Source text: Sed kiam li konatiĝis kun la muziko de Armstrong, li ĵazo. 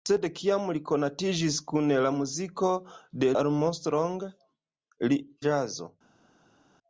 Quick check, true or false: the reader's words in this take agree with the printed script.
true